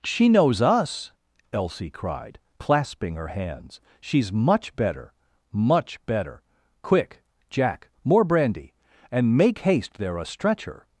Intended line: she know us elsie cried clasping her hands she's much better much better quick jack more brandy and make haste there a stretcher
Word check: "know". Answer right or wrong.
wrong